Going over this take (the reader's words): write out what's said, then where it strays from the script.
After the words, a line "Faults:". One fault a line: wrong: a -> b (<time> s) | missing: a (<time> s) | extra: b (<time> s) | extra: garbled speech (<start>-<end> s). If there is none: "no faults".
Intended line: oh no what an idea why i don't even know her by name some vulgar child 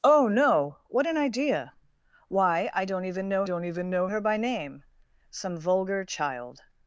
oh no what an idea why i don't even know don't even know her by name some vulgar child
Faults:
extra: don't even know (3.4 s)